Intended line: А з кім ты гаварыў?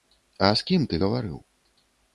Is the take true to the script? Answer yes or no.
yes